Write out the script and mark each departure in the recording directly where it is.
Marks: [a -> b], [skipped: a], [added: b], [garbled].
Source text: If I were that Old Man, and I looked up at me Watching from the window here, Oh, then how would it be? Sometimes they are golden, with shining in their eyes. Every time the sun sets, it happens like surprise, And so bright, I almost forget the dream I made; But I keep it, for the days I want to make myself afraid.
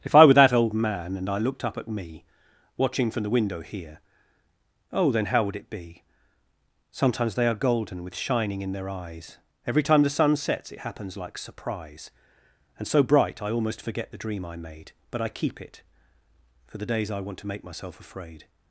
If I were that Old Man, and I looked up at me Watching from the window here, Oh, then how would it be? Sometimes they are golden, with shining in their eyes. Every time the sun sets, it happens like surprise, And so bright, I almost forget the dream I made; But I keep it, for the days I want to make myself afraid.